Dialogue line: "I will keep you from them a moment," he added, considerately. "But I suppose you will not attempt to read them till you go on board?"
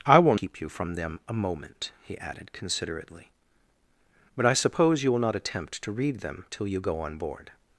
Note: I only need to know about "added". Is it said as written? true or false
true